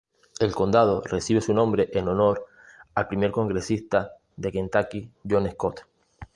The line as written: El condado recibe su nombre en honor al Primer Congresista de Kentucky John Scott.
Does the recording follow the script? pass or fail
pass